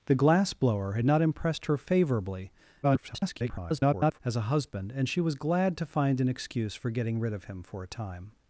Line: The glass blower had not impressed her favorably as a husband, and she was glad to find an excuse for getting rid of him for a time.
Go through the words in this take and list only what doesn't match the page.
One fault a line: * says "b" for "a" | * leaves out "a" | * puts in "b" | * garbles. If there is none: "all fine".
* garbles